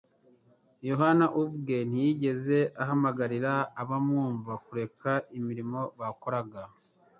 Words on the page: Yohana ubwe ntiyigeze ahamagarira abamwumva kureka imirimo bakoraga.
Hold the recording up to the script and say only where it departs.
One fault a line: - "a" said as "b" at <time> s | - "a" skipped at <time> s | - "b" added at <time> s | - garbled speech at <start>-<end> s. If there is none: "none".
none